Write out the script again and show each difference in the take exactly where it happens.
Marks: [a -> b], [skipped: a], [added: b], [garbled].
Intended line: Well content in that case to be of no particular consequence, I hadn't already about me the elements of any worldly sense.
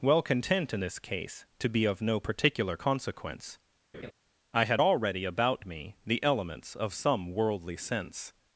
Well content in [that -> this] case to be of no particular consequence, I [hadn't -> had] already about me the elements of [any -> some] worldly sense.